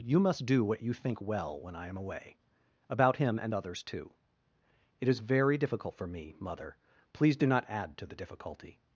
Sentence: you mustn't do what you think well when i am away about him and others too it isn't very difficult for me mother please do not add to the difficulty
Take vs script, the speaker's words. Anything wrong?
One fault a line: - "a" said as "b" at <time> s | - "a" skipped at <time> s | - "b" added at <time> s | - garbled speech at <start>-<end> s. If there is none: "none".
- "mustn't" said as "must" at 0.2 s
- "isn't" said as "is" at 5.1 s